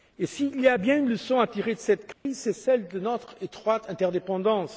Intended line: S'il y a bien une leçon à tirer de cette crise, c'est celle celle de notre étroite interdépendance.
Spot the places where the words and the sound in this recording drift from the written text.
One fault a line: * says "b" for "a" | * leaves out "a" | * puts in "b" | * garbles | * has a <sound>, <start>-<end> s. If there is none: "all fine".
* has a dropout, 2.1-2.3 s
* leaves out "celle"